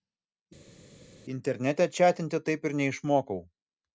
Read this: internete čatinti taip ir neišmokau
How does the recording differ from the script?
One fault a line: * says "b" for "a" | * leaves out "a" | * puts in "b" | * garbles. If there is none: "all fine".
all fine